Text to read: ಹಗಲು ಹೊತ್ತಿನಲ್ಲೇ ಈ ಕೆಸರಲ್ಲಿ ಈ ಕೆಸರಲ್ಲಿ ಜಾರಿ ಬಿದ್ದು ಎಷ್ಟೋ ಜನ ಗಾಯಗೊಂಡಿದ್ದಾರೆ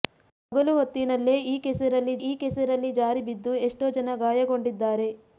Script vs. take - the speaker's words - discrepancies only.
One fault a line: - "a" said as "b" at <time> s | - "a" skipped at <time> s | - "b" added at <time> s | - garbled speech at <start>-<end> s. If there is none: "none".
none